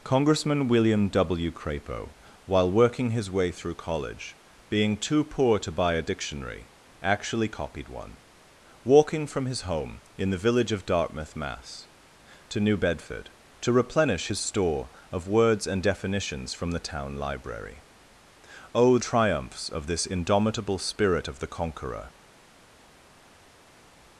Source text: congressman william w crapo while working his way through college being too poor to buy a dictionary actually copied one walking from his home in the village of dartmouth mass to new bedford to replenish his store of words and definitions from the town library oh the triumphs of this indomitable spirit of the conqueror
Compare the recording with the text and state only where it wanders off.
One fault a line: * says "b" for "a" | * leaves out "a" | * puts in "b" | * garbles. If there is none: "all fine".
* leaves out "the"